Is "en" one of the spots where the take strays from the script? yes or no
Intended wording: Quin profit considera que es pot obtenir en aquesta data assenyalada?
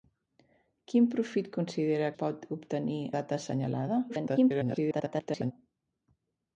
yes